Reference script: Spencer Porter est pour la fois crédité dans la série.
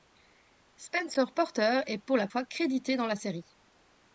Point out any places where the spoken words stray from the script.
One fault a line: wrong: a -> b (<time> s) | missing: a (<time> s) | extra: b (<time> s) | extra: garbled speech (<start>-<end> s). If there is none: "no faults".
no faults